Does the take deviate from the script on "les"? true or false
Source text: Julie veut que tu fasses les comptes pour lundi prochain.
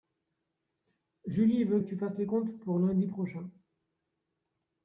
false